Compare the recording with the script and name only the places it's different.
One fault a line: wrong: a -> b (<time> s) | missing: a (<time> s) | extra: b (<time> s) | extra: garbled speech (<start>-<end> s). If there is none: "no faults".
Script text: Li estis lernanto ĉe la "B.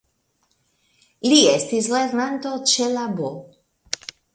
no faults